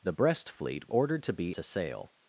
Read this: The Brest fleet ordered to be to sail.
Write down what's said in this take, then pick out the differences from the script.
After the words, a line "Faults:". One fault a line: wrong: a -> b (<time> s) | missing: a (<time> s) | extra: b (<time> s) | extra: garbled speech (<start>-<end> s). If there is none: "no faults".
The Brest fleet ordered to be to sail.
Faults:
no faults